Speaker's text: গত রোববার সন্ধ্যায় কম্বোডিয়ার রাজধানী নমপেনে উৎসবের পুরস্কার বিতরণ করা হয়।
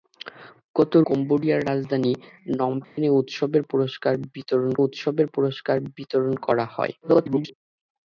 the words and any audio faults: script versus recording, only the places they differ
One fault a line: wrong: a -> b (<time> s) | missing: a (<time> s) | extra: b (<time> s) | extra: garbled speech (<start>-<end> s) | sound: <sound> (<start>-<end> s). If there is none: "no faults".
missing: রোববার সন্ধ্যায় (0.9 s)
sound: dropout (2.8-3.0 s)
extra: উৎসবের পুরস্কার বিতরণ (4.8 s)
extra: garbled speech (7.0-7.5 s)